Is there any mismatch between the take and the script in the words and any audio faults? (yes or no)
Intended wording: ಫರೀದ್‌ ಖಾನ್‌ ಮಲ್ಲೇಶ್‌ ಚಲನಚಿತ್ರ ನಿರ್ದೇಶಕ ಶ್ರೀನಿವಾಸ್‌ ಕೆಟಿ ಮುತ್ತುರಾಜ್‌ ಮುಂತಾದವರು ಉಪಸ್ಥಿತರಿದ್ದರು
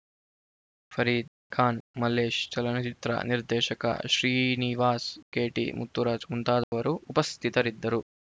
yes